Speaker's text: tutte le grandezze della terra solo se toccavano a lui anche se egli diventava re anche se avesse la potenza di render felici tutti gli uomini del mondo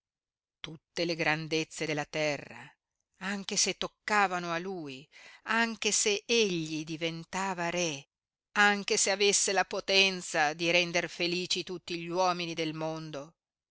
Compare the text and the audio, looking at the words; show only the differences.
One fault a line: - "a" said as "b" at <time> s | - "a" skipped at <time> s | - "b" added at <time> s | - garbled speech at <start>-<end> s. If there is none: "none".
- "solo" said as "anche" at 3.2 s